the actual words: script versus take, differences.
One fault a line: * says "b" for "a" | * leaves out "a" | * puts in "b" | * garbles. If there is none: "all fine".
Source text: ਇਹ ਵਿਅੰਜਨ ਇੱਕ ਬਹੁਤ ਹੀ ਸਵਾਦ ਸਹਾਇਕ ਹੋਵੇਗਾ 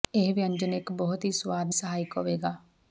all fine